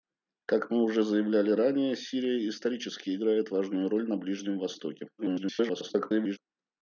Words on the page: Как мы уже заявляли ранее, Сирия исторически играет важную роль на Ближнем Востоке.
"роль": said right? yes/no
yes